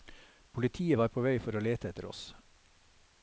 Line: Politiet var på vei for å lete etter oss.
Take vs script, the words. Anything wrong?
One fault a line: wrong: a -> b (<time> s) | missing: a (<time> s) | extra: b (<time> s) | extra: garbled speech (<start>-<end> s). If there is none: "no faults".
no faults